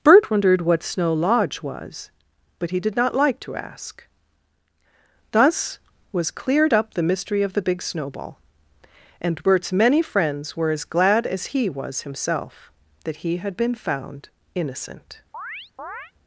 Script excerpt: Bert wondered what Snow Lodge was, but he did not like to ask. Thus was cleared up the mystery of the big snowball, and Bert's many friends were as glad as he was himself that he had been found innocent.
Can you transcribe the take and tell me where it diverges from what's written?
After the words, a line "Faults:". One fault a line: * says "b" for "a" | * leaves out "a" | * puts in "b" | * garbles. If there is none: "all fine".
Bert wondered what Snow Lodge was, but he did not like to ask. Thus was cleared up the mystery of the big snowball, and Bert's many friends were as glad as he was himself that he had been found innocent.
Faults:
all fine